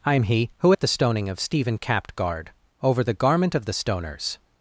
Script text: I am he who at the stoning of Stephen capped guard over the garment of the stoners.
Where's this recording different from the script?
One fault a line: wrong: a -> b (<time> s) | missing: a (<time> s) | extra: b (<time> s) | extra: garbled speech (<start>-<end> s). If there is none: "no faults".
no faults